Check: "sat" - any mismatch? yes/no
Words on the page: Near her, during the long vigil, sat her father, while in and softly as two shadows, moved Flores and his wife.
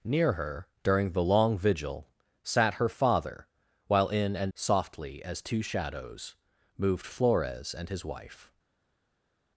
no